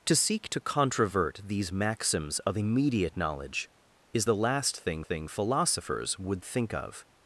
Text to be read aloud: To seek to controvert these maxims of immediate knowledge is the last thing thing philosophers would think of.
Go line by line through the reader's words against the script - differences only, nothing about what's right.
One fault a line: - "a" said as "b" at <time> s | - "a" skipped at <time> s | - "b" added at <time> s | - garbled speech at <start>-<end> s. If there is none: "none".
none